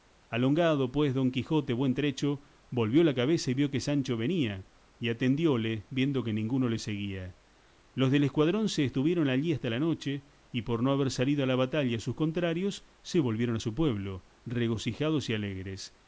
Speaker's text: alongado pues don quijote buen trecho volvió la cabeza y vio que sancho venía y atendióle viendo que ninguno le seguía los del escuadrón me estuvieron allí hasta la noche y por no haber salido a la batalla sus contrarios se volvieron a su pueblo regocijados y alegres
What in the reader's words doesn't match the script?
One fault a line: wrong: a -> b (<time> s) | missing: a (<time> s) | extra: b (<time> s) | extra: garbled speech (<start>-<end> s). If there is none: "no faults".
wrong: me -> se (8.7 s)